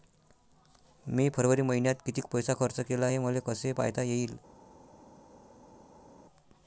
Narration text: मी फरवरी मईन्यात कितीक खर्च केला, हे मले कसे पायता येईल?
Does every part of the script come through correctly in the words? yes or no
no